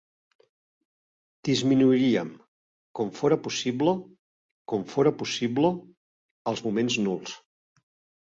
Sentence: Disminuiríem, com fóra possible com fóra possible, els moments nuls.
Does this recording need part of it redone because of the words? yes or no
no